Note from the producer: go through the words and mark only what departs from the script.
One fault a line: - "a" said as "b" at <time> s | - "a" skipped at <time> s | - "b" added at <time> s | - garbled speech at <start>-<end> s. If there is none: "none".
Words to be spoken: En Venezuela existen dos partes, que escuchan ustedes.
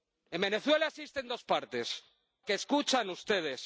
none